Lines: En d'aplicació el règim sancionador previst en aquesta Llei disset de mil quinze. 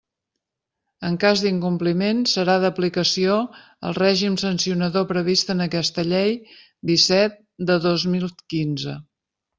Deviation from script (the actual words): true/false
true